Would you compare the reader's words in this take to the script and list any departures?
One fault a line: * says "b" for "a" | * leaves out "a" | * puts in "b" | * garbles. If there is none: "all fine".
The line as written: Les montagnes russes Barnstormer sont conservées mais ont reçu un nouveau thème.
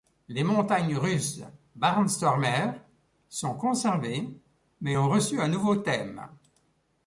all fine